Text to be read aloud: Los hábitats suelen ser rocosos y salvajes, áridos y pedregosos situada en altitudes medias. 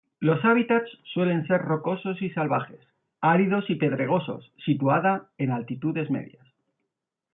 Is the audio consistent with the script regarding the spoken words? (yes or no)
yes